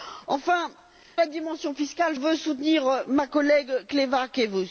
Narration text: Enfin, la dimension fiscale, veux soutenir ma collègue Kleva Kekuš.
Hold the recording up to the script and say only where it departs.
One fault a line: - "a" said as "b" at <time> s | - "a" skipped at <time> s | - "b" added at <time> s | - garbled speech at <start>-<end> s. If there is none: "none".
none